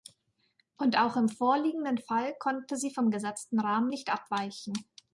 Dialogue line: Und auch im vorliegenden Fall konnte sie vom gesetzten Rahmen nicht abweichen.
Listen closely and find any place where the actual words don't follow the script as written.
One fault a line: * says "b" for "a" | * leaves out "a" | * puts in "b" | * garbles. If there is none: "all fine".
all fine